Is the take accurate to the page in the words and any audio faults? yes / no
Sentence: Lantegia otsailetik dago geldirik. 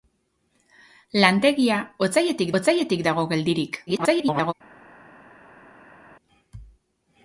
no